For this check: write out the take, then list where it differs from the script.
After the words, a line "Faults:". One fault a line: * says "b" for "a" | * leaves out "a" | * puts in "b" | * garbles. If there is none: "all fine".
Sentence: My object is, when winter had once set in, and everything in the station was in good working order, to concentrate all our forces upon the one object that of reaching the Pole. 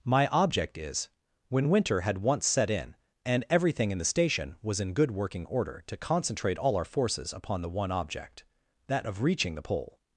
My object is, when winter had once set in, and everything in the station was in good working order, to concentrate all our forces upon the one object that of reaching the Pole.
Faults:
all fine